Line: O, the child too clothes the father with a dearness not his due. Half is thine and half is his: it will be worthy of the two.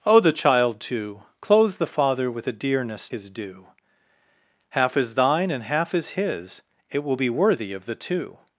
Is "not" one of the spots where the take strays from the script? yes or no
yes